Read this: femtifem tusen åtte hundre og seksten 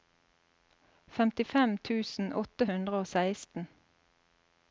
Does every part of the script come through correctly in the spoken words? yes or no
yes